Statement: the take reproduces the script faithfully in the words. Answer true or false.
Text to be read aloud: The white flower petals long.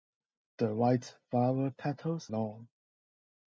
true